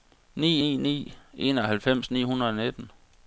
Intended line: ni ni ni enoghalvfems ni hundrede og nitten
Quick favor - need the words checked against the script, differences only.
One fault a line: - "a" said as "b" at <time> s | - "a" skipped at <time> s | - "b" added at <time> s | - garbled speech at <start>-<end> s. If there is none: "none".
none